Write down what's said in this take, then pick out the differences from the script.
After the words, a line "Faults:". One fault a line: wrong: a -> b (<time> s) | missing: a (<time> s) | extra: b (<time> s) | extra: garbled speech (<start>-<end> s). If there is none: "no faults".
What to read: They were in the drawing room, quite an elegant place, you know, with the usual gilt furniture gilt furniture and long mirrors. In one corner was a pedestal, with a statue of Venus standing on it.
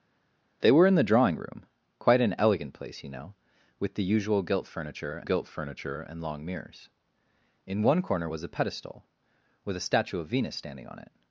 They were in the drawing room, quite an elegant place, you know, with the usual gilt furniture gilt furniture and long mirrors. In one corner was a pedestal, with a statue of Venus standing on it.
Faults:
no faults